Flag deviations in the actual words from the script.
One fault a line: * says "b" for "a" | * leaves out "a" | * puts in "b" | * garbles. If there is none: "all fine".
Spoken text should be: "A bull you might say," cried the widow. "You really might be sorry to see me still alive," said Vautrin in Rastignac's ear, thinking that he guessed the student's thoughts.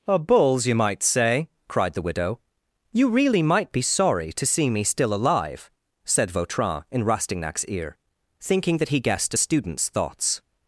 * says "bulls" for "bull"
* says "a" for "the"